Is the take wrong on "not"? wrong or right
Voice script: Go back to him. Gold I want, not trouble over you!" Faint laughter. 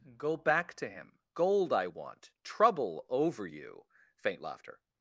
wrong